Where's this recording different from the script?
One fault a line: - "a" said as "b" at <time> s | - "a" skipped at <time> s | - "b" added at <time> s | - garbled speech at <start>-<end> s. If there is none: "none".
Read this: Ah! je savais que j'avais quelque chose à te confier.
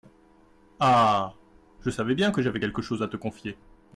- "bien" added at 2.1 s